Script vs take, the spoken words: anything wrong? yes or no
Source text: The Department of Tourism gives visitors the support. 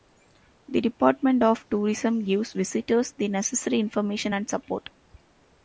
yes